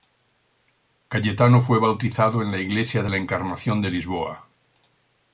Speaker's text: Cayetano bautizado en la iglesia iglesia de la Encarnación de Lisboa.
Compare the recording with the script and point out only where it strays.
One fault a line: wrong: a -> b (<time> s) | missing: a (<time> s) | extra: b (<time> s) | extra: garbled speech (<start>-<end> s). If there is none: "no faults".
extra: fue (1.6 s)
missing: iglesia (3.0 s)